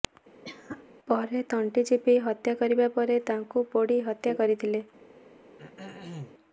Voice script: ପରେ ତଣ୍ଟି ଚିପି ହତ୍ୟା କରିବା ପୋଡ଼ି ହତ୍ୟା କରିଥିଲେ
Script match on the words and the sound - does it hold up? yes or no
no